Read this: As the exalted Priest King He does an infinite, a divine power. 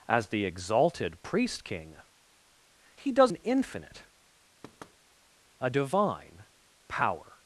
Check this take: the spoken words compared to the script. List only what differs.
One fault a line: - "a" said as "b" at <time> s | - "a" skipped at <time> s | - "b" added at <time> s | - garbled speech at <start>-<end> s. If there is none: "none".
none